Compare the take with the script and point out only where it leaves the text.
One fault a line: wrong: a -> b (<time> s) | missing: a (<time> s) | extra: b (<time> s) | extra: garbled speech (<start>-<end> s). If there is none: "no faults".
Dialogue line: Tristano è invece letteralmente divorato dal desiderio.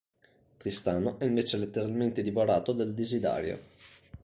no faults